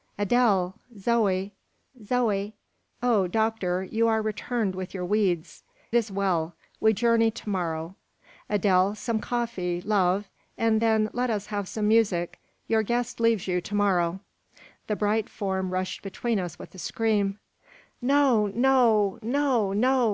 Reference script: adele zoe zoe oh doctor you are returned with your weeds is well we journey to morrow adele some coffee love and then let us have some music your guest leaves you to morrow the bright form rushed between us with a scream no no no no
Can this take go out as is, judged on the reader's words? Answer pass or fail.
pass